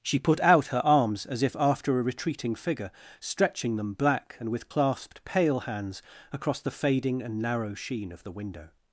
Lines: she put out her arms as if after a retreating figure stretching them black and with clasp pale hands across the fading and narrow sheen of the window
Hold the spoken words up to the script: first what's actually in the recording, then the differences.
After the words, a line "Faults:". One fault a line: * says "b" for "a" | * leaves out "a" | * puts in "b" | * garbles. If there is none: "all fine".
she put out her arms as if after a retreating figure stretching them black and with clasped pale hands across the fading and narrow sheen of the window
Faults:
* says "clasped" for "clasp"